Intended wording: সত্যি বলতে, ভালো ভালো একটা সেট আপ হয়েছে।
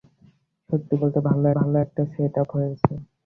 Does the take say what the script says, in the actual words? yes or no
yes